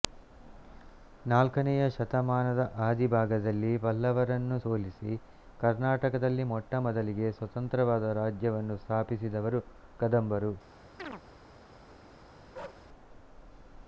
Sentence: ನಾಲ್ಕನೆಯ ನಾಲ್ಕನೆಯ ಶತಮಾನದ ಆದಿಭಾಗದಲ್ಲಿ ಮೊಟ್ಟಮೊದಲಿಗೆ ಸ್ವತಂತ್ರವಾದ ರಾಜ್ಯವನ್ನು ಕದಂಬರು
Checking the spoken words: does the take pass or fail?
fail